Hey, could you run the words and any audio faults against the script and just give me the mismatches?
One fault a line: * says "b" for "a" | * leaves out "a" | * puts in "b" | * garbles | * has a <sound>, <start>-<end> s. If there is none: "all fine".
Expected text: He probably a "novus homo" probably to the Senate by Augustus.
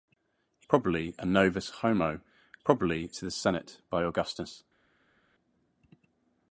all fine